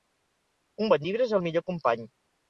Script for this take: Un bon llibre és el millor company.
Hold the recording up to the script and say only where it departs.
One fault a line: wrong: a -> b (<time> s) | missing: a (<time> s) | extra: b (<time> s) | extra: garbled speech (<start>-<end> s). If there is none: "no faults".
no faults